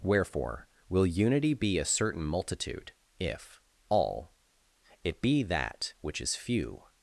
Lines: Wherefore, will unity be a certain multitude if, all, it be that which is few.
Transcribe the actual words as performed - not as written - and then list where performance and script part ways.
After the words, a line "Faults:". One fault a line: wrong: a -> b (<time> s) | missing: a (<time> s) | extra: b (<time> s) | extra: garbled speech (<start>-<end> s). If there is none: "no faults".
Wherefore, will unity be a certain multitude if, all, it be that which is few.
Faults:
no faults